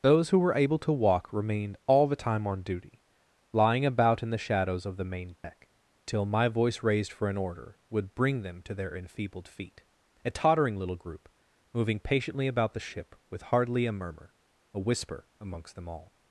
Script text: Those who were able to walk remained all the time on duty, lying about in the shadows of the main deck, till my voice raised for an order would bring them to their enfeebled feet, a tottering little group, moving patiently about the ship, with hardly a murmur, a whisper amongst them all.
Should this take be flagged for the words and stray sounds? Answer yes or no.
yes